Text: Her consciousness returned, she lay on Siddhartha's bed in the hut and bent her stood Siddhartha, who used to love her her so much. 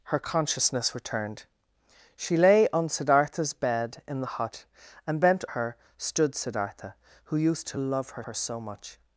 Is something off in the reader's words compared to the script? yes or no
no